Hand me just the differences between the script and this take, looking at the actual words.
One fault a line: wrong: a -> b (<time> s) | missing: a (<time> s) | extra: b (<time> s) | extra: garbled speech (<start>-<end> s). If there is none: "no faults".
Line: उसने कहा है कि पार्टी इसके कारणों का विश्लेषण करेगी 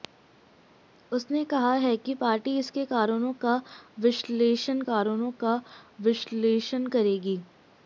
extra: कारणों का विश्लेषण (4.8 s)